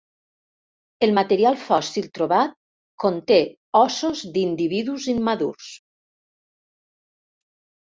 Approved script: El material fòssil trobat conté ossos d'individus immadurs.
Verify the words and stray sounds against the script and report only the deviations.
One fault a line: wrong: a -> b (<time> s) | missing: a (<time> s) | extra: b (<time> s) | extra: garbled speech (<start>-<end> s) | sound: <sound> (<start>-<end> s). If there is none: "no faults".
no faults